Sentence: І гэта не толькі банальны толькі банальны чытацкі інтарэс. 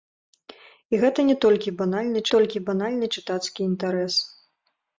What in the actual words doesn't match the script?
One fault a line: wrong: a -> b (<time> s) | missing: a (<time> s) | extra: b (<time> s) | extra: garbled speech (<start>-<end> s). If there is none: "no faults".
no faults